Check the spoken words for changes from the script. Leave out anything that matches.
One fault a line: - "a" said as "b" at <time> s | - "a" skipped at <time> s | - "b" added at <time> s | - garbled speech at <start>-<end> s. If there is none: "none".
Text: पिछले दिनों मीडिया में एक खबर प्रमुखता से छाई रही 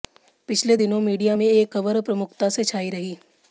none